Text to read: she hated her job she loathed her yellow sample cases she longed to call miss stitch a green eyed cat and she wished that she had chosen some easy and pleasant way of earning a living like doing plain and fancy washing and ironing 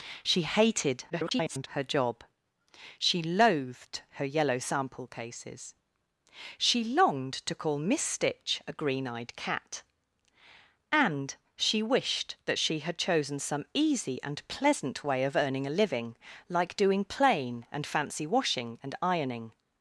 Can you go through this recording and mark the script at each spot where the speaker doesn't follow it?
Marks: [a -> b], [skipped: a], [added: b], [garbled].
she hated [garbled] her job she loathed her yellow sample cases she longed to call miss stitch a green eyed cat and she wished that she had chosen some easy and pleasant way of earning a living like doing plain and fancy washing and ironing